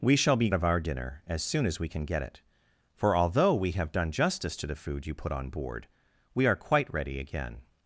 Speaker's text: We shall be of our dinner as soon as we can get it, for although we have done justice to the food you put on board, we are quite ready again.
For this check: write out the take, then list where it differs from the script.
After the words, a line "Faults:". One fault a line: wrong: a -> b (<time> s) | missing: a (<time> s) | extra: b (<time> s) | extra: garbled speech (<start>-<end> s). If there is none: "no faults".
We shall be of our dinner as soon as we can get it, for although we have done justice to the food you put on board, we are quite ready again.
Faults:
no faults